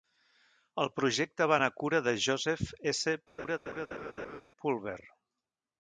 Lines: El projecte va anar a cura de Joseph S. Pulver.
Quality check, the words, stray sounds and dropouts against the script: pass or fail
fail